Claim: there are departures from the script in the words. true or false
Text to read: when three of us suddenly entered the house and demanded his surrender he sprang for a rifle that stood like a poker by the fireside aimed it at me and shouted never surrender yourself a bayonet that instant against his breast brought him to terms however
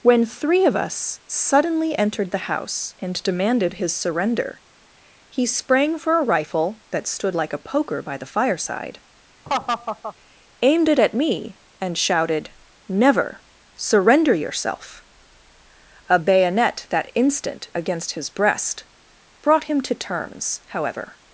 false